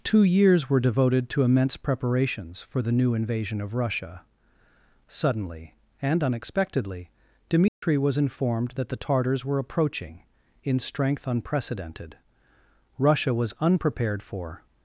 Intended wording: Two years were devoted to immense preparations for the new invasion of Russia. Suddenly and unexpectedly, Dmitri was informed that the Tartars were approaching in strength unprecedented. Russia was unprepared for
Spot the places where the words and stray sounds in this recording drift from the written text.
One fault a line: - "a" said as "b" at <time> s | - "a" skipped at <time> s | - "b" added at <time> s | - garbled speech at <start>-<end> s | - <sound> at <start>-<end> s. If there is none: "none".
- dropout at 7.7-7.8 s